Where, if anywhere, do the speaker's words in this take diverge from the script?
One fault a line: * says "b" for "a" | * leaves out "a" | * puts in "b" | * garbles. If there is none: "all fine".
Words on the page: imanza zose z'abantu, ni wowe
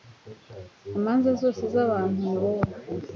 all fine